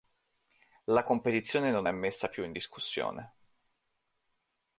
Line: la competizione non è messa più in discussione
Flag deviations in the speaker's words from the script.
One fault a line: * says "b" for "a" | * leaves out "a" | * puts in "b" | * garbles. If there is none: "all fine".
all fine